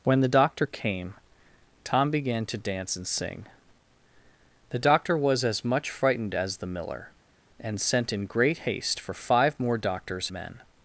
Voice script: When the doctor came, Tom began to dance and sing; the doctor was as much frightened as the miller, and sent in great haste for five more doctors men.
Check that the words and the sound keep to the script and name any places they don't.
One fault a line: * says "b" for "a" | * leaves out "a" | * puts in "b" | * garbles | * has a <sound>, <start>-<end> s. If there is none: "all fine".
all fine